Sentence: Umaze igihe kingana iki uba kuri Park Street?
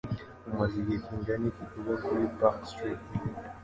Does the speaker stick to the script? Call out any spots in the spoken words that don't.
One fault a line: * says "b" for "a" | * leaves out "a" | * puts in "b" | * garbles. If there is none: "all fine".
all fine